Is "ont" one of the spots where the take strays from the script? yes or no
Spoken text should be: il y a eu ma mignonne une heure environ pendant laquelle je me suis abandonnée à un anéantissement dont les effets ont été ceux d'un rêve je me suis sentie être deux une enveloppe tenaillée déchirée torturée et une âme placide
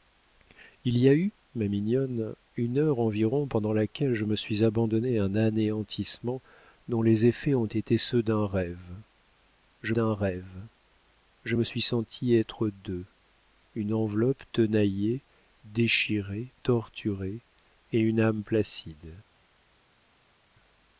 no